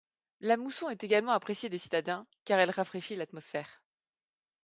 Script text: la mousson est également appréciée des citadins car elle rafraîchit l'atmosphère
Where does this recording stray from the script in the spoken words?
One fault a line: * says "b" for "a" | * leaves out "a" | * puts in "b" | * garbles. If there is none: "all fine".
all fine